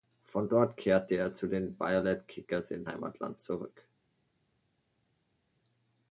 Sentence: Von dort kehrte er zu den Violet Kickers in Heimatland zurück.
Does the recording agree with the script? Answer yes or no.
yes